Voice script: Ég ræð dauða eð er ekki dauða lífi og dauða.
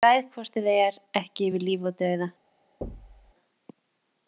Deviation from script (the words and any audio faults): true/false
true